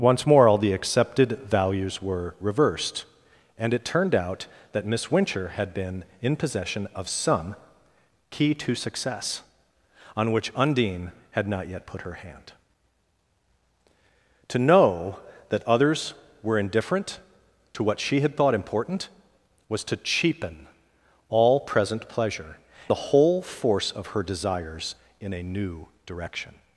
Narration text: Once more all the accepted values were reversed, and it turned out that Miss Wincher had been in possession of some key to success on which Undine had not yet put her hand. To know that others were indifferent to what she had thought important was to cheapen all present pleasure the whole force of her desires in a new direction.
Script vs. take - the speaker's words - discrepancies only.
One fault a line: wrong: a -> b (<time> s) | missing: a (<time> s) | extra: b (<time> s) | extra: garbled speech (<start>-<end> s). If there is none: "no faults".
no faults